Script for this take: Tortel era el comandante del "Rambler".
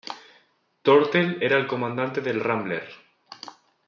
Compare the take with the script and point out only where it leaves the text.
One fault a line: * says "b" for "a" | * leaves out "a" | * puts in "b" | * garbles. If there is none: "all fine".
all fine